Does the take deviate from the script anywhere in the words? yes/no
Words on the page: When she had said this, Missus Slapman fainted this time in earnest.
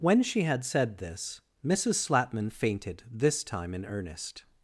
no